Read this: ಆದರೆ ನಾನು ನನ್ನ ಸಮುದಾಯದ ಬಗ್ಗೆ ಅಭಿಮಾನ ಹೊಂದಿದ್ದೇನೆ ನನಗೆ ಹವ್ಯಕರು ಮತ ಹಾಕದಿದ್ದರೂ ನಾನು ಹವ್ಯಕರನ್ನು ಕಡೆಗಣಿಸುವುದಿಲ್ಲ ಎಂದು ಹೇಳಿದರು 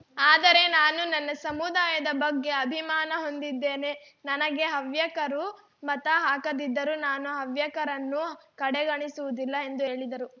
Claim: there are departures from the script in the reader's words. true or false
false